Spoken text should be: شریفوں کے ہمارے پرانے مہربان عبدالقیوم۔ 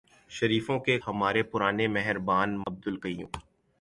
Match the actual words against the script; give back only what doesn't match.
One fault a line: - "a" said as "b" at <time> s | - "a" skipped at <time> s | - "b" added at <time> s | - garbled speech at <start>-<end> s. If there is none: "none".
none